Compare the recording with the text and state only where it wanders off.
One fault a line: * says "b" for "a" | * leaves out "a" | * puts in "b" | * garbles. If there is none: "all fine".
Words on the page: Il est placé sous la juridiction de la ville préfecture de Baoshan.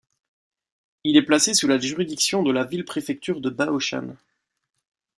all fine